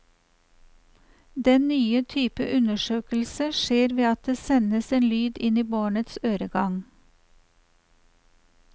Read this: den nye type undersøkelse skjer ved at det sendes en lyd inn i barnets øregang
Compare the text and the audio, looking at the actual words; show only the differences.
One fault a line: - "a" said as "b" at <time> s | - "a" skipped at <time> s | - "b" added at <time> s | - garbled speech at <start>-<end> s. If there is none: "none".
none